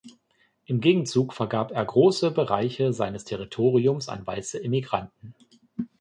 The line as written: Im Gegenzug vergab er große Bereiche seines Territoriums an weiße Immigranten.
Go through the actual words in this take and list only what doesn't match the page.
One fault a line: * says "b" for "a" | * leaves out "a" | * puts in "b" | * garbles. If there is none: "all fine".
all fine